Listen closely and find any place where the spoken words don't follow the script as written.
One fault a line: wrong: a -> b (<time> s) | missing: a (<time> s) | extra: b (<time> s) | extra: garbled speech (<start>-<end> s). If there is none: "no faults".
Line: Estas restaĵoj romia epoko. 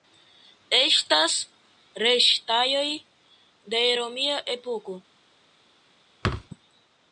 extra: de (3.8 s)